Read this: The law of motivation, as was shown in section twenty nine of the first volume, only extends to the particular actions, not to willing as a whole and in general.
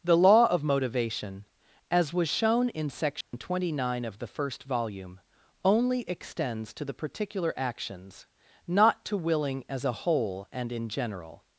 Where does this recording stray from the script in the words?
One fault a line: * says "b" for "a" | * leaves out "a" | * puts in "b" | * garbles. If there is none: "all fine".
all fine